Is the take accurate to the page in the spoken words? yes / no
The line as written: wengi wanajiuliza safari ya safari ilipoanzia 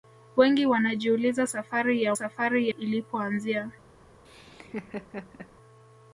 yes